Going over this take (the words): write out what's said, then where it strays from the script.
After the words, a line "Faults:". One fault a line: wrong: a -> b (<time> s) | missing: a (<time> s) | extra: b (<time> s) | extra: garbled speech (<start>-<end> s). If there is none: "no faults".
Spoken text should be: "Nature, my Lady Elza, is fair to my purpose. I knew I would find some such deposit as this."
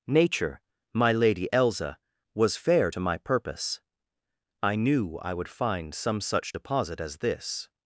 "Nature, my Lady Elza, was fair to my purpose. I knew I would find some such deposit as this."
Faults:
wrong: is -> was (2.3 s)